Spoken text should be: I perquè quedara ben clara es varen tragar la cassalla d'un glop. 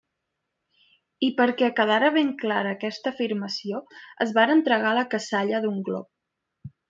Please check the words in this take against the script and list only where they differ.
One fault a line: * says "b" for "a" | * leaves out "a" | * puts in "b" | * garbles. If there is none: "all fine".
* puts in "aquesta afirmació"